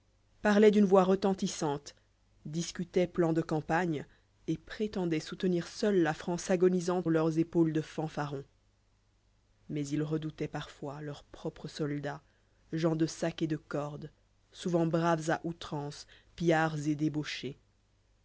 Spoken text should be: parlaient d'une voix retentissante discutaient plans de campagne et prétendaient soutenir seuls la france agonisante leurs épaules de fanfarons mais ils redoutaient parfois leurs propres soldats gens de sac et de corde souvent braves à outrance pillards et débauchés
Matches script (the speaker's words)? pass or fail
pass